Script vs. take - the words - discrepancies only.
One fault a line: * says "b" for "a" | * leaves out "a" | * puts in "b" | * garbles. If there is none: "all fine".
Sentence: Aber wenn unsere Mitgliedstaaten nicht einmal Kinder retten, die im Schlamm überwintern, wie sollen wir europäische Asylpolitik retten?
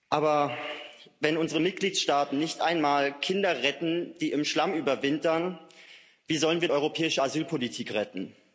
all fine